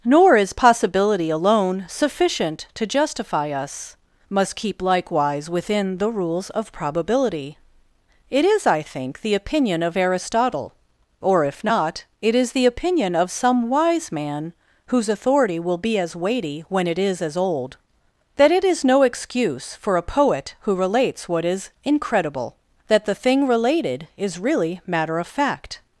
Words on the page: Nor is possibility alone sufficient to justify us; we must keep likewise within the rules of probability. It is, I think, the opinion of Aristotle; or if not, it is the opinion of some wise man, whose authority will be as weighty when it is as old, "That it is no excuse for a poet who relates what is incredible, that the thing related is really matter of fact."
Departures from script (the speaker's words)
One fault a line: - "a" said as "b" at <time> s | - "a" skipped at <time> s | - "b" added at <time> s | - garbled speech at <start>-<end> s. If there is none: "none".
- "we" skipped at 4.0 s